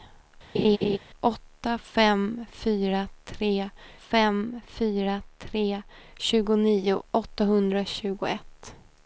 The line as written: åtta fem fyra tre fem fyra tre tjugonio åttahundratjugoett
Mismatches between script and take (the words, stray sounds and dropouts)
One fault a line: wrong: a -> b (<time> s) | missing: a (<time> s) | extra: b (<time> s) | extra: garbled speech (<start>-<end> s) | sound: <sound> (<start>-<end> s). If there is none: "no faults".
sound: laugh (0.5-1.0 s)